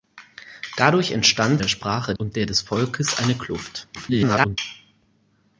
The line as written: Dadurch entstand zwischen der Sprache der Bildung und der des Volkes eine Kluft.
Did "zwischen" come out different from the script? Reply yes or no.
yes